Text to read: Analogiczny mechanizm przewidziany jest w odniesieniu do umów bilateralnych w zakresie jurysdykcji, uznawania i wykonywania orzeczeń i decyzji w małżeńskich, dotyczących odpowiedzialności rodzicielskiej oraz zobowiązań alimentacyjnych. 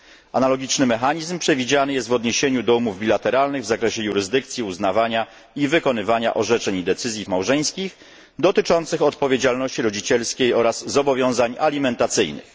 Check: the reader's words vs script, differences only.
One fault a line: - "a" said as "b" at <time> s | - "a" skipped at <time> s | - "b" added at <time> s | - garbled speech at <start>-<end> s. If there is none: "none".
none